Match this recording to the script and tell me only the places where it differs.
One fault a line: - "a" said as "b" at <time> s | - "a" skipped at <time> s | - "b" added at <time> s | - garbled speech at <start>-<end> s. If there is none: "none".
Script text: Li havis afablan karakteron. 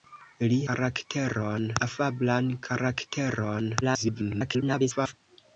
- "havis" said as "karakteron" at 0.7 s
- garbled speech at 3.8-5.1 s